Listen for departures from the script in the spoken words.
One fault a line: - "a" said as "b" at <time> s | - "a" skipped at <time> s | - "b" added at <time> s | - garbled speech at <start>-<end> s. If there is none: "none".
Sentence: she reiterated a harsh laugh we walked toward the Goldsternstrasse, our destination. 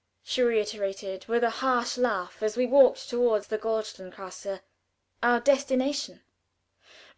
- "with" added at 1.3 s
- "as" added at 2.4 s